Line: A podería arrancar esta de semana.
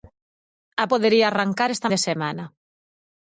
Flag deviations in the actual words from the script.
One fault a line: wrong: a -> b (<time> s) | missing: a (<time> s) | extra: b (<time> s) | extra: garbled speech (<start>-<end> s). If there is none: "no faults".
no faults